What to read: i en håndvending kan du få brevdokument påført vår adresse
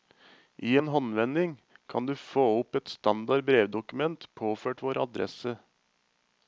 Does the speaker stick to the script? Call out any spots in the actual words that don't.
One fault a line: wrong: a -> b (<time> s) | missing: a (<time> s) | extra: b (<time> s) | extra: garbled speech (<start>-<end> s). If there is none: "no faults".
extra: opp et standard (2.6 s)